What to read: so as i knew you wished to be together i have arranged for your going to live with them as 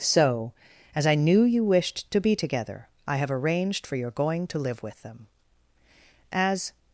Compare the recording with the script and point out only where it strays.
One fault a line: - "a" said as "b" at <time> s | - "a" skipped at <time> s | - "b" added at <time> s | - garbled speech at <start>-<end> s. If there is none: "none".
none